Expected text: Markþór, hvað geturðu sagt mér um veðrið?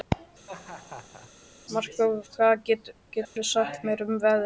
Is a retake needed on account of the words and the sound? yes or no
yes